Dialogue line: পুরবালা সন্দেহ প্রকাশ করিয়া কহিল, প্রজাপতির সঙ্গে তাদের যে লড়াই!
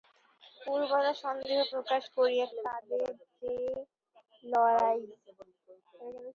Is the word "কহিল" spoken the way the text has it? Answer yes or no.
no